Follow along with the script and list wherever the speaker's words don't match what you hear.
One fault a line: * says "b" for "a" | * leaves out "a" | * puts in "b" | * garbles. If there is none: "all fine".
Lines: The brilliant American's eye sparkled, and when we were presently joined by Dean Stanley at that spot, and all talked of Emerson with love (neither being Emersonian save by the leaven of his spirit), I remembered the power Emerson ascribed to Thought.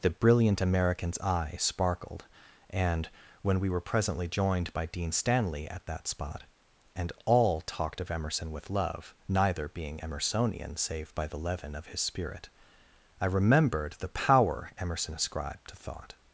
all fine